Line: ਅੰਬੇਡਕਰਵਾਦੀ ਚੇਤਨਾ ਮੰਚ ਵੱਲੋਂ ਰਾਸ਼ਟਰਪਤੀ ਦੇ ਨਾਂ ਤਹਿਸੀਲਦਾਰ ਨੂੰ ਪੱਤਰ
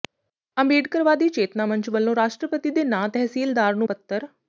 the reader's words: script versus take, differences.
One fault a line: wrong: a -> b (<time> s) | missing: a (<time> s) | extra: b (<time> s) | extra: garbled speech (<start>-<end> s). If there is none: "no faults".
no faults